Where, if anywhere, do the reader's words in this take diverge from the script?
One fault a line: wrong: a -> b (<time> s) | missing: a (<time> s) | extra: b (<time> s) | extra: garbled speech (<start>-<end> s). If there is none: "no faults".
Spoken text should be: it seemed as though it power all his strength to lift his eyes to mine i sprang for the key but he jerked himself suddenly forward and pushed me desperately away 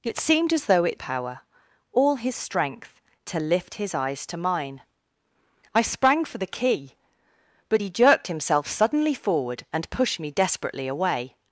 no faults